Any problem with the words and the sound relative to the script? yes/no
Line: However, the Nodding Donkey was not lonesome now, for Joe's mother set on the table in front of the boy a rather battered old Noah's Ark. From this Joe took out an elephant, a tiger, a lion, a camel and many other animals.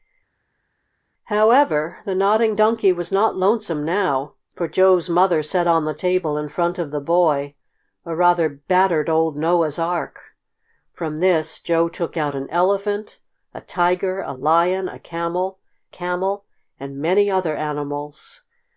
yes